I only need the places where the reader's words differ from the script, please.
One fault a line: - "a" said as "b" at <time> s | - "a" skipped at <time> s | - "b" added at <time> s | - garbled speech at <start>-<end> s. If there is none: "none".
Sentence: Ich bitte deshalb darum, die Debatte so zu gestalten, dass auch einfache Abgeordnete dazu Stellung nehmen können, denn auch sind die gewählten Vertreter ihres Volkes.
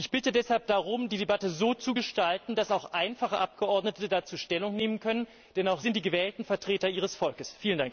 none